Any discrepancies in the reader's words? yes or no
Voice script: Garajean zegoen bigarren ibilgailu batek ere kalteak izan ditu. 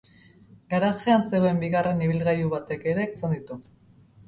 yes